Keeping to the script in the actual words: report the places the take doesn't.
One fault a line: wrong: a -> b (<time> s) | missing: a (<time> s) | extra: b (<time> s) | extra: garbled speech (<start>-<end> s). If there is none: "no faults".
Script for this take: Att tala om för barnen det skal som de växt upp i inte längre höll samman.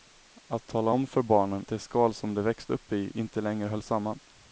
no faults